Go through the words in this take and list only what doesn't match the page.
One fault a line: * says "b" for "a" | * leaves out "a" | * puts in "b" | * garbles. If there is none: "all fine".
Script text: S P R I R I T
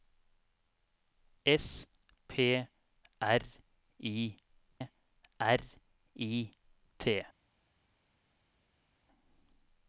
all fine